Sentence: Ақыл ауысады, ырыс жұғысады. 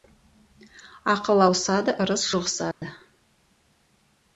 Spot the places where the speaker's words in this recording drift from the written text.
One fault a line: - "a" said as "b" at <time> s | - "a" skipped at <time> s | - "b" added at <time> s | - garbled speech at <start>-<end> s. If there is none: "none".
none